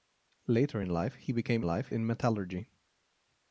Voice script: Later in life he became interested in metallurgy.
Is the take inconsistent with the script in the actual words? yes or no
yes